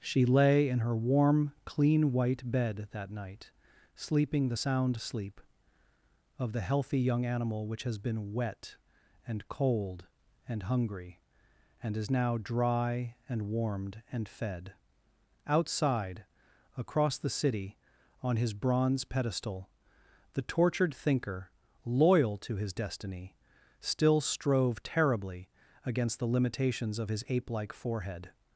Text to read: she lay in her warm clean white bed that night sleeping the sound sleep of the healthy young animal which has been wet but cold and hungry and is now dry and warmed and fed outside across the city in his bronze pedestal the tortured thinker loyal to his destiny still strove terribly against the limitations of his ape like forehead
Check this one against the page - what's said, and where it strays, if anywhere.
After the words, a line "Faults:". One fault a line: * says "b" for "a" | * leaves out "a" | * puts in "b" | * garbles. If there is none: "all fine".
she lay in her warm clean white bed that night sleeping the sound sleep of the healthy young animal which has been wet and cold and hungry and is now dry and warmed and fed outside across the city on his bronze pedestal the tortured thinker loyal to his destiny still strove terribly against the limitations of his ape like forehead
Faults:
* says "and" for "but"
* says "on" for "in"